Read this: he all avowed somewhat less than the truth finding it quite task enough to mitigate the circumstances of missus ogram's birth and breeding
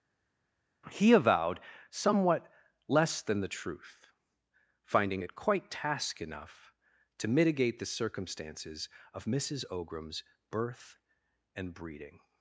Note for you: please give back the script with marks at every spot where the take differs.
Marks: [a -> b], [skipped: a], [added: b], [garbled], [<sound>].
he [skipped: all] avowed somewhat less than the truth finding it quite task enough to mitigate the circumstances of missus ogram's birth and breeding